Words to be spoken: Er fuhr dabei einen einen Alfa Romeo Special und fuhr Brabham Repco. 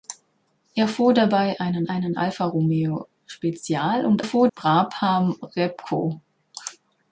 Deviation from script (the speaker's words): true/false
false